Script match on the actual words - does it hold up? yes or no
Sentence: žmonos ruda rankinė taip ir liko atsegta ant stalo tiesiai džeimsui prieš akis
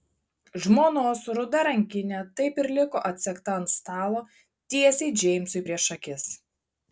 yes